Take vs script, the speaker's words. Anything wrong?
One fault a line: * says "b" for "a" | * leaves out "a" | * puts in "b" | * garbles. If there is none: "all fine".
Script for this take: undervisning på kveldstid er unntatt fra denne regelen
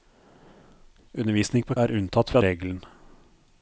* leaves out "kveldstid"
* leaves out "denne"